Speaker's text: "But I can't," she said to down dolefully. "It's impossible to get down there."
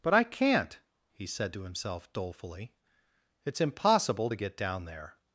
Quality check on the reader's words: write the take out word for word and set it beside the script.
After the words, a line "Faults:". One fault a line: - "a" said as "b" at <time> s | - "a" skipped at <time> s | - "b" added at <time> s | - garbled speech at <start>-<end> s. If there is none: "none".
"But I can't," he said to himself dolefully. "It's impossible to get down there."
Faults:
- "she" said as "he" at 1.1 s
- "down" said as "himself" at 1.6 s